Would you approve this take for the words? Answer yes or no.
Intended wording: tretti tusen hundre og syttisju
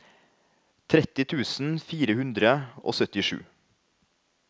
no